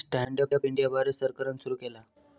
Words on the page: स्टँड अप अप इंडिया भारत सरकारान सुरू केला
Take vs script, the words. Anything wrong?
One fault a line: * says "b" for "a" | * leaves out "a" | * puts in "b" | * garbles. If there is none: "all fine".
all fine